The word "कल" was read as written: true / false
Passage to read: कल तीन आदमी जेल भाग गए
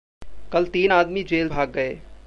true